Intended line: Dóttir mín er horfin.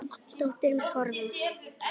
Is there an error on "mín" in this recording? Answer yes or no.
yes